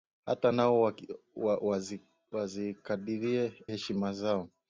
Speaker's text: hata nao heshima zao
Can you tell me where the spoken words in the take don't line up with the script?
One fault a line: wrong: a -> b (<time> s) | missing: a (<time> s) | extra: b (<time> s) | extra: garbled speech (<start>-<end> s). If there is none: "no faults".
no faults